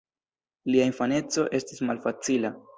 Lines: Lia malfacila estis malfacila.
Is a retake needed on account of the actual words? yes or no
yes